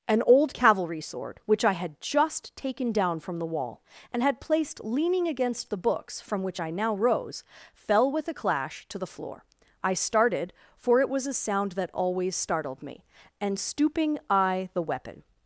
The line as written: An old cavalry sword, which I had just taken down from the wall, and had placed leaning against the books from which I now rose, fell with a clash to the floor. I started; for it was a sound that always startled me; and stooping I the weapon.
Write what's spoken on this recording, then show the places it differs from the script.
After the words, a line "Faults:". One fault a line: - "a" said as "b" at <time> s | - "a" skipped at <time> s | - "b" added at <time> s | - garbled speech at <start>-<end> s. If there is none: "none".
An old cavalry sword, which I had just taken down from the wall, and had placed leaning against the books from which I now rose, fell with a clash to the floor. I started; for it was a sound that always startled me; and stooping I the weapon.
Faults:
none